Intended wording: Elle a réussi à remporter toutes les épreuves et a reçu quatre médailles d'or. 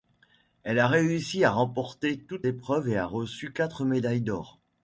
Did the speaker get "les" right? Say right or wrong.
wrong